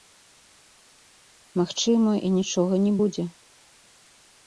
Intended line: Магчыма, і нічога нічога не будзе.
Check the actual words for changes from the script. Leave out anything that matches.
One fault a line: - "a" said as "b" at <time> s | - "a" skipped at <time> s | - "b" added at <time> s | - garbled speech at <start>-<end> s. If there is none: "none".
- "нічога" skipped at 2.7 s